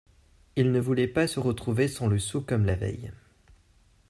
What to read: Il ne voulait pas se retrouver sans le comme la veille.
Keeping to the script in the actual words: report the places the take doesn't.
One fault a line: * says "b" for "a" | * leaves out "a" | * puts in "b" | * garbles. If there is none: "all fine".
* puts in "sou"